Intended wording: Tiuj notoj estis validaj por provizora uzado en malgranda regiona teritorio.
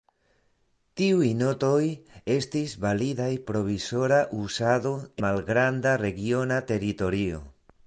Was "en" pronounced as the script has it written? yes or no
no